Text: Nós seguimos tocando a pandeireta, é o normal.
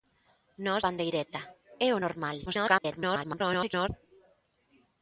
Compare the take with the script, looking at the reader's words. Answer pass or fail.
fail